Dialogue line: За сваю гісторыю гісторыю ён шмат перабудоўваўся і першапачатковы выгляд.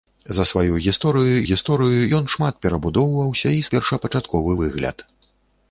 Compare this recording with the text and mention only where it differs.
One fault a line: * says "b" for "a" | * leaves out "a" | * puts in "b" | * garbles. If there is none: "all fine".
all fine